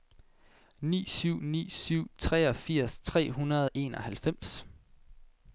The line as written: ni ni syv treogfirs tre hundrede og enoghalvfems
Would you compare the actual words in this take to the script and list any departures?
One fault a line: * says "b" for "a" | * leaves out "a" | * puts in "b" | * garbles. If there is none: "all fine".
* puts in "syv"